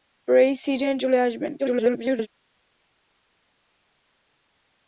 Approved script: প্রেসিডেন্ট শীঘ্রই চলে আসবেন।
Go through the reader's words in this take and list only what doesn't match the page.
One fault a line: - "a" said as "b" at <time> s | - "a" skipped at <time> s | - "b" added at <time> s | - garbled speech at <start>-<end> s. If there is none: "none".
- "শীঘ্রই" skipped at 1.0 s
- garbled speech at 1.6-2.3 s